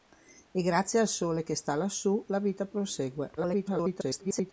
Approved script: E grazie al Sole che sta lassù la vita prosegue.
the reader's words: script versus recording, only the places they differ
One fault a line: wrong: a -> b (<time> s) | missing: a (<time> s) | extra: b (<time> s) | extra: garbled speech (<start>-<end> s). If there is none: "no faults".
extra: garbled speech (3.4-4.5 s)